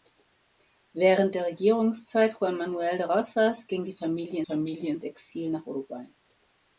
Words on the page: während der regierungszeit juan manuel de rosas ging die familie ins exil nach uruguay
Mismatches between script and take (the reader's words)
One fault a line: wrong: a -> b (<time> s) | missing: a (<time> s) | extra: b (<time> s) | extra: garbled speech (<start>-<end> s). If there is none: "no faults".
extra: familie (4.4 s)